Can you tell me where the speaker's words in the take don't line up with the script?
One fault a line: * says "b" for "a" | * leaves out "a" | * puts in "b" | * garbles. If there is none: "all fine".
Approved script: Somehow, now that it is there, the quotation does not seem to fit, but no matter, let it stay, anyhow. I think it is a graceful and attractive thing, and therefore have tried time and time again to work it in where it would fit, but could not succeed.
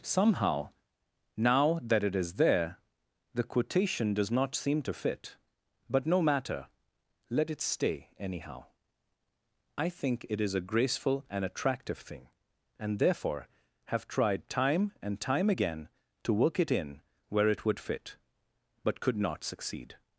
all fine